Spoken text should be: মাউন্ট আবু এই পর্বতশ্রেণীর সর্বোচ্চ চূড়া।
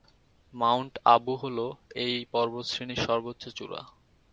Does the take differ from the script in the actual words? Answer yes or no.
yes